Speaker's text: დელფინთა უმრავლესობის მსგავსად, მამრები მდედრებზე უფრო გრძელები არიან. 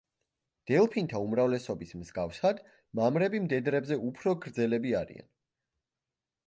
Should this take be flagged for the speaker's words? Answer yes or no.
no